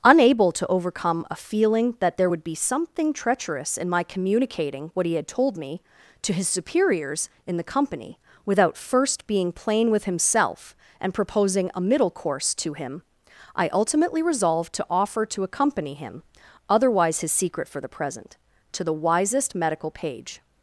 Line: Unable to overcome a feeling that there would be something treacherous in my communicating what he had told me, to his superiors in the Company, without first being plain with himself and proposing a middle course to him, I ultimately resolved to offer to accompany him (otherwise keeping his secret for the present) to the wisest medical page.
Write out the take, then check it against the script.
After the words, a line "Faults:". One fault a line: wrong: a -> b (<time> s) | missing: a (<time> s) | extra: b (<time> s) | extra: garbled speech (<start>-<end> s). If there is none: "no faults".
Unable to overcome a feeling that there would be something treacherous in my communicating what he had told me, to his superiors in the Company, without first being plain with himself and proposing a middle course to him, I ultimately resolved to offer to accompany him (otherwise his secret for the present) to the wisest medical page.
Faults:
missing: keeping (17.2 s)